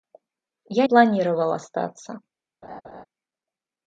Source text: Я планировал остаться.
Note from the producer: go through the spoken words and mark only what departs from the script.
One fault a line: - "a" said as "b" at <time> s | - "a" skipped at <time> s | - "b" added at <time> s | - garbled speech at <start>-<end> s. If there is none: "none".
none